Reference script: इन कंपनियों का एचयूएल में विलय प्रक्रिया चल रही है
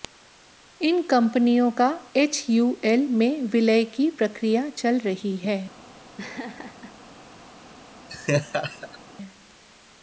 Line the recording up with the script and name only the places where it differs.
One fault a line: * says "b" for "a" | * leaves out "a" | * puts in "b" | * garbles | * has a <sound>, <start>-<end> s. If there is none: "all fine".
* puts in "की"
* has a laugh, 6.2-6.9 s
* has a laugh, 8.1-9.0 s